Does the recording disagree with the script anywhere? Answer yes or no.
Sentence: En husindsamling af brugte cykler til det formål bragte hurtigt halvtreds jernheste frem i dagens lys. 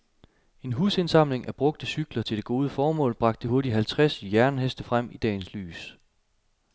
yes